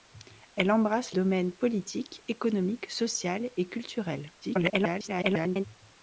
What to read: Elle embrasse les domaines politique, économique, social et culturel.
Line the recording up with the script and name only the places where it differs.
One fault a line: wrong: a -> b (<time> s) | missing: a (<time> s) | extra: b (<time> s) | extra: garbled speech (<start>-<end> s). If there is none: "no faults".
missing: les (1.1 s)
extra: garbled speech (4.4-5.6 s)